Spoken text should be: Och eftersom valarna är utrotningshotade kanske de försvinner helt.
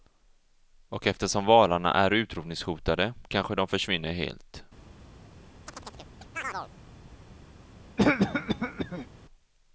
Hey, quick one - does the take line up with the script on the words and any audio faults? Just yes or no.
no